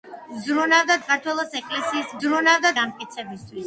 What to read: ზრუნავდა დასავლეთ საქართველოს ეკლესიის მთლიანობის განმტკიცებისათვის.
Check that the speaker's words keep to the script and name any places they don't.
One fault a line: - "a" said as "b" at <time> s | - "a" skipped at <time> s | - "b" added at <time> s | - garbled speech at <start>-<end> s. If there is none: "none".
- "დასავლეთ" skipped at 0.9 s
- "მთლიანობის" said as "ზრუნავდა" at 2.2 s